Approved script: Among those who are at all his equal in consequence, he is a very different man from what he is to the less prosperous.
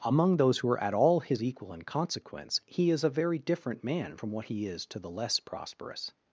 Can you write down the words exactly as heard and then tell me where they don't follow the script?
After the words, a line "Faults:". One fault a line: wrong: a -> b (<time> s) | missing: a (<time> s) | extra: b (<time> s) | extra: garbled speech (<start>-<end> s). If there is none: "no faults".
Among those who are at all his equal in consequence, he is a very different man from what he is to the less prosperous.
Faults:
no faults